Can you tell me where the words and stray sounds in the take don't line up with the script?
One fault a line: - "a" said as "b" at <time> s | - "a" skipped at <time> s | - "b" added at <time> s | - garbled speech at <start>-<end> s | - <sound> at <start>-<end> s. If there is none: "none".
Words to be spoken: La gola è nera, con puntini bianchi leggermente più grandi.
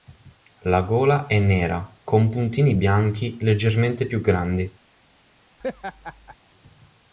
- laugh at 5.6-6.4 s